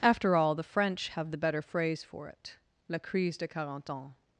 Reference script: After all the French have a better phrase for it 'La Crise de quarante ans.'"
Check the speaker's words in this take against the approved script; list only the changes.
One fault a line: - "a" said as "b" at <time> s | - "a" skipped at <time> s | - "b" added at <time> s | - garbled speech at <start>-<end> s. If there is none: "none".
- "a" said as "the" at 1.3 s